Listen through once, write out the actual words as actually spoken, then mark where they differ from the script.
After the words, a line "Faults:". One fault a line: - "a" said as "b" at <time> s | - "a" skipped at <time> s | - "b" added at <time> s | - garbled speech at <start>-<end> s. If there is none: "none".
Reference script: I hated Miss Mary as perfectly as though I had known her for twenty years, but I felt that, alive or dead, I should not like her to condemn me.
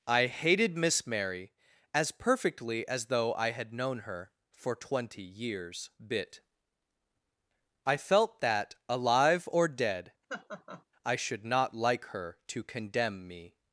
I hated Miss Mary as perfectly as though I had known her for twenty years, bit I felt that, alive or dead, I should not like her to condemn me.
Faults:
- "but" said as "bit" at 6.0 s